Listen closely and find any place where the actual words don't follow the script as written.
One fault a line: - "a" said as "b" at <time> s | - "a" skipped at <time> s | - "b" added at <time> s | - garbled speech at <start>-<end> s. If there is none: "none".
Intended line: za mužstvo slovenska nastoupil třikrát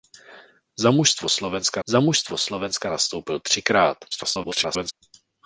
- "za mužstvo slovenska" added at 1.9 s
- garbled speech at 4.1-4.9 s